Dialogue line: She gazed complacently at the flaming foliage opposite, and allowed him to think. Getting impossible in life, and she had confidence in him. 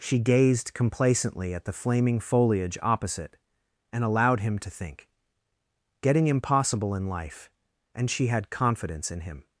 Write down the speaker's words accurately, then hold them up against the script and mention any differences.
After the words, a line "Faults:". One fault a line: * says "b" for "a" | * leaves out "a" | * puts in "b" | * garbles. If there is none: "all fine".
She gazed complacently at the flaming foliage opposite, and allowed him to think. Getting impossible in life, and she had confidence in him.
Faults:
all fine